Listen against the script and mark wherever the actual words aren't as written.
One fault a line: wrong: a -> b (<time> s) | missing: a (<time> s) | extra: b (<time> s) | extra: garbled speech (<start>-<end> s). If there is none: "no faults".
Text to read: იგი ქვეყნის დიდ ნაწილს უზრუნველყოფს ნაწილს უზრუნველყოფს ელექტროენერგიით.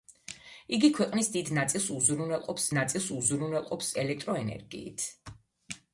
no faults